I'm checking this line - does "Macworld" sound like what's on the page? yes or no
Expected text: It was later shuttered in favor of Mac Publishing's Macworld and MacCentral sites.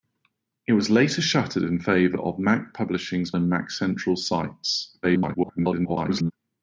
no